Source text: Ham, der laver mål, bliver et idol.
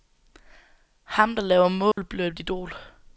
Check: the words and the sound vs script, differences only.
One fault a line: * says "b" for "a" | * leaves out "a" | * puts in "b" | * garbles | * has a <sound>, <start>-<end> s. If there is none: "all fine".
* has a dropout, 1.9-2.0 s